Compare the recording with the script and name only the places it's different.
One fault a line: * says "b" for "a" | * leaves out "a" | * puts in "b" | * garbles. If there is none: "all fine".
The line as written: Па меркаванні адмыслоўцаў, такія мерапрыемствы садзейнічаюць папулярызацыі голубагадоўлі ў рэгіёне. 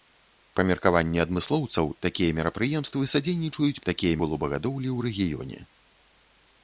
* says "такія" for "папулярызацыі"